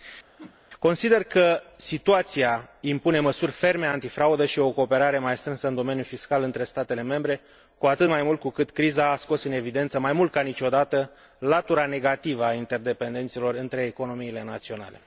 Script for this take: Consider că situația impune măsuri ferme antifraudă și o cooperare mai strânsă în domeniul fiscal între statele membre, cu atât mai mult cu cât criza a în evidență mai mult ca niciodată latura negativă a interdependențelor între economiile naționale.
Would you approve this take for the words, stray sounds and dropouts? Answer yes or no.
no